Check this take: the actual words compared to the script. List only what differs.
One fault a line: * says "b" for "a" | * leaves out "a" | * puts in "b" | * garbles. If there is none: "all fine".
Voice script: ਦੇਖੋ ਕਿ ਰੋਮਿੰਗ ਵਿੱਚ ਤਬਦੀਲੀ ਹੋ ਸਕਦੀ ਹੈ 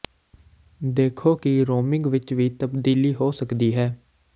* puts in "ਵੀ"